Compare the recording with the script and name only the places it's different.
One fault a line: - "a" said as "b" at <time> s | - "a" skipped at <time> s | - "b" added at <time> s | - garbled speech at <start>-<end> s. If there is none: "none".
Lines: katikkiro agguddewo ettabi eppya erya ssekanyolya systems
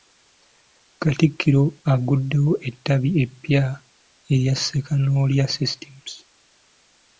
none